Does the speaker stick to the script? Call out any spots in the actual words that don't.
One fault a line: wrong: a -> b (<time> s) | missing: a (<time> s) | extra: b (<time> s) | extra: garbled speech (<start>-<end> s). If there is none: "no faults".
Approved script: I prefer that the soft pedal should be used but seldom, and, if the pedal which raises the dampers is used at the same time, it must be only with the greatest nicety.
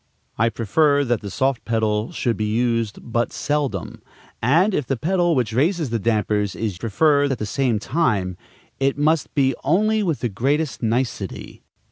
wrong: used -> prefer (6.7 s)